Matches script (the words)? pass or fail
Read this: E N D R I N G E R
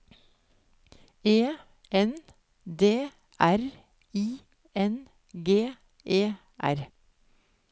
pass